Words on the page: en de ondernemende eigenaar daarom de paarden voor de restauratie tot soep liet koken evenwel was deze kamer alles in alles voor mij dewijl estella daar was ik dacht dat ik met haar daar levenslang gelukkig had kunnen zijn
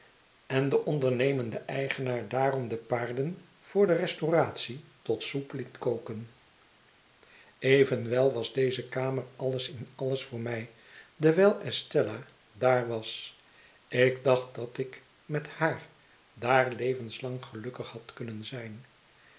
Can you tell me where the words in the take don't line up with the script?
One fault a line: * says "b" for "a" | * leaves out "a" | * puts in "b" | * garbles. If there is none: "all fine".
all fine